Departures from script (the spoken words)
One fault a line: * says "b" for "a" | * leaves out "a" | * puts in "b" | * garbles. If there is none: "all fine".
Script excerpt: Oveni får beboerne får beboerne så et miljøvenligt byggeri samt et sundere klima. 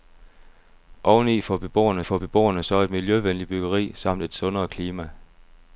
all fine